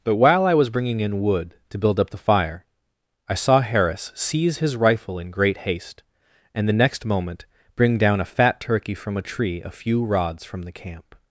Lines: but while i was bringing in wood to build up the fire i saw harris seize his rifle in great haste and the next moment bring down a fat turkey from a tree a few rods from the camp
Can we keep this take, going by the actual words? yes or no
yes